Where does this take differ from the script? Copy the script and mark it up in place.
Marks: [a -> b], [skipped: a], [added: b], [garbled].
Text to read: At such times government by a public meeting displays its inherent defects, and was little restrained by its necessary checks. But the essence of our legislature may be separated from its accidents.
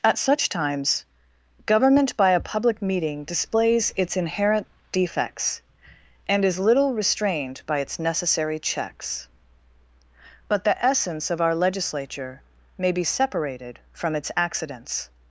At such times government by a public meeting displays its inherent defects, and [was -> is] little restrained by its necessary checks. But the essence of our legislature may be separated from its accidents.